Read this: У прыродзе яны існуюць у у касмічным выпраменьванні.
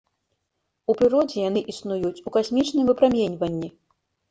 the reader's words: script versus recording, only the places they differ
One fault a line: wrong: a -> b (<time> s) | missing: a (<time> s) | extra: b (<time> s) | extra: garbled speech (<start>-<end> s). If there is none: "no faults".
missing: у (2.4 s)